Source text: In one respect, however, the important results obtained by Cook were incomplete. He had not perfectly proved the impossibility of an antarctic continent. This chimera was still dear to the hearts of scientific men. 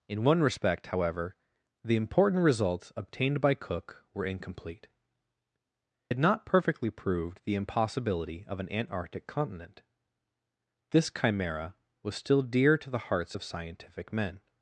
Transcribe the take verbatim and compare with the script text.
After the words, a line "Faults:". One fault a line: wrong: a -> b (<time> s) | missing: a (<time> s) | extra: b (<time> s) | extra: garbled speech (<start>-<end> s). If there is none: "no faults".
In one respect, however, the important results obtained by Cook were incomplete. Had not perfectly proved the impossibility of an antarctic continent. This chimera was still dear to the hearts of scientific men.
Faults:
missing: He (4.9 s)